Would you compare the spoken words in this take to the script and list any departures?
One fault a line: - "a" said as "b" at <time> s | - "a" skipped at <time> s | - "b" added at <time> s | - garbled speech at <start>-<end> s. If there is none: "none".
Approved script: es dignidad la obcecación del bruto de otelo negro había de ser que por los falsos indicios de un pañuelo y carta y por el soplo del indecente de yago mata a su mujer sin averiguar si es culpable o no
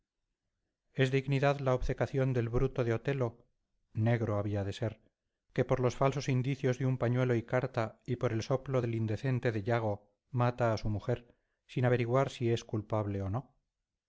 none